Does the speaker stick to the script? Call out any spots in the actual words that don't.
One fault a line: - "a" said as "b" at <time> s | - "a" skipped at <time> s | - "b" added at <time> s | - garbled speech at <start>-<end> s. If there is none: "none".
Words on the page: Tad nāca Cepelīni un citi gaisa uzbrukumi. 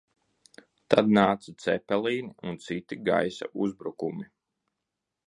none